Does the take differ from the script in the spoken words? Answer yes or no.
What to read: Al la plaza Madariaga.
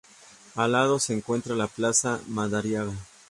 yes